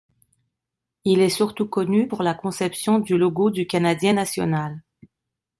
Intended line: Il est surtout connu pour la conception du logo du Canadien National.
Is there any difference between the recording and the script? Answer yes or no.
no